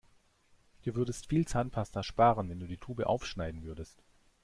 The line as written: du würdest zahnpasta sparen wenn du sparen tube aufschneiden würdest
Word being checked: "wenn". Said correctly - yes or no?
yes